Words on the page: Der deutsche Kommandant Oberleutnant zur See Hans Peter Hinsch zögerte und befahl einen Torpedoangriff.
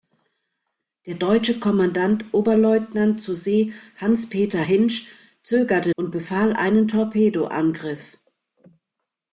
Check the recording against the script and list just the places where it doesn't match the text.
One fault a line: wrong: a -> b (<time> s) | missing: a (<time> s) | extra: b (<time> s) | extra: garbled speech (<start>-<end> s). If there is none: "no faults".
no faults